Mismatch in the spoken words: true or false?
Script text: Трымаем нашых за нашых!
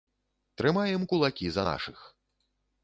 true